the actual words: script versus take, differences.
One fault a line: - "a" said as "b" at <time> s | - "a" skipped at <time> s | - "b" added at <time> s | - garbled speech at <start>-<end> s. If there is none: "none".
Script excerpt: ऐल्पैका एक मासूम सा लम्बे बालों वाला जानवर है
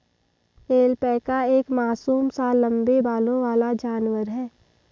none